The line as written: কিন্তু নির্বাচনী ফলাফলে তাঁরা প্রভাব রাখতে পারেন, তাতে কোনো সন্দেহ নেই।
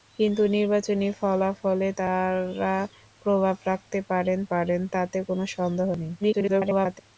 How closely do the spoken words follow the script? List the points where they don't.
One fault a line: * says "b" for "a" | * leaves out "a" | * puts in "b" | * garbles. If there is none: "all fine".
* puts in "পারেন"
* garbles